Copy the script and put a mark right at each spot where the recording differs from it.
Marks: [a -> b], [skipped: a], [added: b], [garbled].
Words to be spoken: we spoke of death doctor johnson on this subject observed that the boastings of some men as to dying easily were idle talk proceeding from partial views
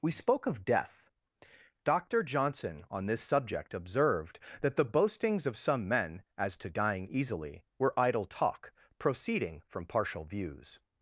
we spoke of death doctor johnson on this subject observed that the boastings of some men as to dying easily were idle talk proceeding from partial views